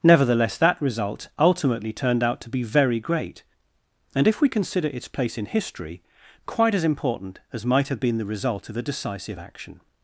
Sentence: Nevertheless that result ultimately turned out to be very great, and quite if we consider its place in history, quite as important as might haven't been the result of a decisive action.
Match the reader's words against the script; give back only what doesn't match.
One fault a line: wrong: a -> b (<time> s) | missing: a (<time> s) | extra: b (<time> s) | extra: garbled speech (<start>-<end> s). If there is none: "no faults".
missing: quite (4.3 s)
wrong: haven't -> have (7.9 s)